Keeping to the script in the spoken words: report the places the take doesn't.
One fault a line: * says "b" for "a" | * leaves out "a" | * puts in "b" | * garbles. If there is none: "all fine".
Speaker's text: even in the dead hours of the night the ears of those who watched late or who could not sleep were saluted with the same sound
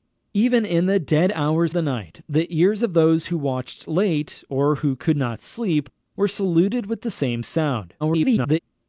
* leaves out "of"
* garbles